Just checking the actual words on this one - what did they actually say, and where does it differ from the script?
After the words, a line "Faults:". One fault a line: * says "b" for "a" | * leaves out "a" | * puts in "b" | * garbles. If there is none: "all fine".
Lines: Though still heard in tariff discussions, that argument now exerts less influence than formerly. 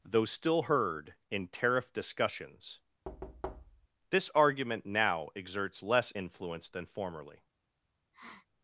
Though still heard in tariff discussions, this argument now exerts less influence than formerly.
Faults:
* says "this" for "that"